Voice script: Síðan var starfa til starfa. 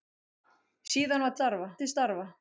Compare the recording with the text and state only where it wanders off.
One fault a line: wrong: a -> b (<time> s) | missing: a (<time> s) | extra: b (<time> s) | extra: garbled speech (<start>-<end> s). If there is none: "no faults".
no faults